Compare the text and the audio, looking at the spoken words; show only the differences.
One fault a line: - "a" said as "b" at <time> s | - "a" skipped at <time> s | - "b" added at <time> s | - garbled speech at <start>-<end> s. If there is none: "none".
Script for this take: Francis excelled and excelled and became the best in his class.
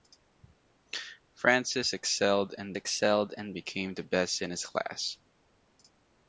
none